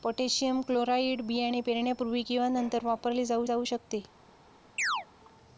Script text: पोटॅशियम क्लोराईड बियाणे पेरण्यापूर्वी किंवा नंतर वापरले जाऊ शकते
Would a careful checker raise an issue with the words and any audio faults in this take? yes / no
yes